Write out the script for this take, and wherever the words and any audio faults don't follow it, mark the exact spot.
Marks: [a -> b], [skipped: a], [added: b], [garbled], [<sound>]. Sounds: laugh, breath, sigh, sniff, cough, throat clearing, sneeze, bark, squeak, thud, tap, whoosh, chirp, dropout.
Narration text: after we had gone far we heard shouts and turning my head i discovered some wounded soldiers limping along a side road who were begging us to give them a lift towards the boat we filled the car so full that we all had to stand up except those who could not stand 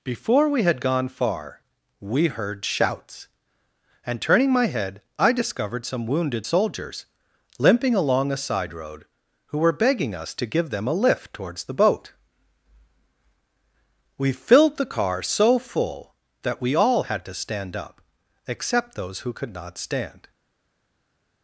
[after -> before] we had gone far we heard shouts and turning my head i discovered some wounded soldiers limping along a side road who were begging us to give them a lift towards the boat we filled the car so full that we all had to stand up except those who could not stand